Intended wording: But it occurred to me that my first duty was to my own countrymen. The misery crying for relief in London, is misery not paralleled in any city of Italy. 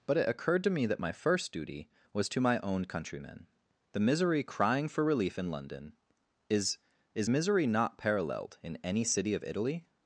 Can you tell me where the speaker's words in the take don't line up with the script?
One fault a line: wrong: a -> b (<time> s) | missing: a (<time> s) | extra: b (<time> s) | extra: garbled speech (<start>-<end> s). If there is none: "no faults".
extra: is (7.1 s)